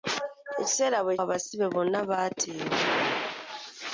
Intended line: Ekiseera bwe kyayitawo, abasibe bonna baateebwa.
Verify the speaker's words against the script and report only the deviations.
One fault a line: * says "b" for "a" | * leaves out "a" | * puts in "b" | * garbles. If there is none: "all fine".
* leaves out "kyayitawo"